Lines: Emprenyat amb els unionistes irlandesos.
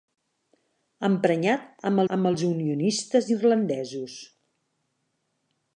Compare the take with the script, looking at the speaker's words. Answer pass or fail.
fail